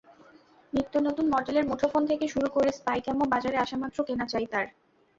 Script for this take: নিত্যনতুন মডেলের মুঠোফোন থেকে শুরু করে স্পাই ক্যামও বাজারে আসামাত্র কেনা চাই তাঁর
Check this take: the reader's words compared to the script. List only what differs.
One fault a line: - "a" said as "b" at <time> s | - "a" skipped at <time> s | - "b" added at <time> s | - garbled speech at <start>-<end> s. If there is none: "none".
none